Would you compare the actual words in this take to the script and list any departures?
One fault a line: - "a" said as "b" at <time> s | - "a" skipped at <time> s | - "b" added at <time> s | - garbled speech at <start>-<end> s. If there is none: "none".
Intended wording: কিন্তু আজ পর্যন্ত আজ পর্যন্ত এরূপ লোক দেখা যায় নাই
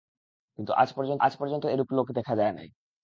none